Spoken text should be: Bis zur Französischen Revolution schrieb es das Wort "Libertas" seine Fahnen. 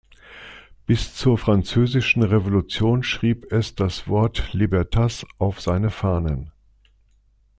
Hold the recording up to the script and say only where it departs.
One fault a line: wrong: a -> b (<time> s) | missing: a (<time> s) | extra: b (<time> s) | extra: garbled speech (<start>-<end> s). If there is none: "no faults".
extra: auf (5.4 s)